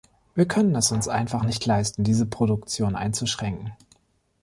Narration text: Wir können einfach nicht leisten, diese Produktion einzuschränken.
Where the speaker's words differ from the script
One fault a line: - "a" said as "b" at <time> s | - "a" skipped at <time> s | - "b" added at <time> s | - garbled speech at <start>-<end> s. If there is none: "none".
- "es uns" added at 0.8 s